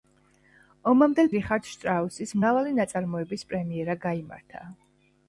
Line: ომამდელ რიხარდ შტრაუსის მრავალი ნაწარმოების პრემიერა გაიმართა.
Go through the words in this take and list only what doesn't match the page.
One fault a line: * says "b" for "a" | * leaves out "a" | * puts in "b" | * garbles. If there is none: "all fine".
all fine